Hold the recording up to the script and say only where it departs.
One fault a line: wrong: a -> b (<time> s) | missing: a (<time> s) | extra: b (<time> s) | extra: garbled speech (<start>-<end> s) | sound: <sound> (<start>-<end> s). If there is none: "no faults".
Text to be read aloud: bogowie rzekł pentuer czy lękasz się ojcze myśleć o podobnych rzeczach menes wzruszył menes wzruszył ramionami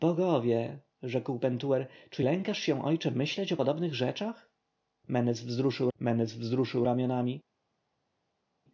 no faults